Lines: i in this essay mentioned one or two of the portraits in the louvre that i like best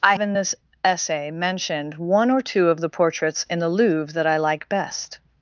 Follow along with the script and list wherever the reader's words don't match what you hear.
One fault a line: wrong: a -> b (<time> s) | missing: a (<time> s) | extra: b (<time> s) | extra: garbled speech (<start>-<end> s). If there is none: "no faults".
no faults